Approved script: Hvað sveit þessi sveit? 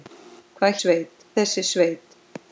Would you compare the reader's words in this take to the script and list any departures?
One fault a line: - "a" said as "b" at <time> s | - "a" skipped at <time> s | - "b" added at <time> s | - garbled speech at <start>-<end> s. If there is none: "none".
none